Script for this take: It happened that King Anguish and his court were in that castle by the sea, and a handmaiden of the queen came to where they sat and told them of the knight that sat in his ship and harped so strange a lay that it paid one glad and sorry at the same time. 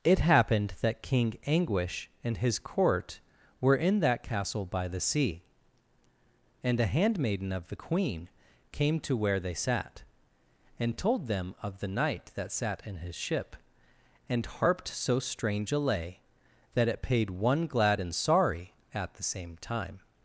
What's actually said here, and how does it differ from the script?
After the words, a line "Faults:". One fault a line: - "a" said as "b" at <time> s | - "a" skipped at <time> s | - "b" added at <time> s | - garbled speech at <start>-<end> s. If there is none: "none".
It happened that King Anguish and his court were in that castle by the sea, and a handmaiden of the queen came to where they sat and told them of the knight that sat in his ship and harped so strange a lay that it paid one glad and sorry at the same time.
Faults:
none